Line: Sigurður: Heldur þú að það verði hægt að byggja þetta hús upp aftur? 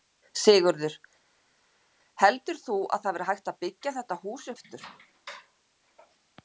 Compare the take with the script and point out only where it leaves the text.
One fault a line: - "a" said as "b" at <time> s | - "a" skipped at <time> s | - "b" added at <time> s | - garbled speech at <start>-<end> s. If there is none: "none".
- "upp" skipped at 4.5 s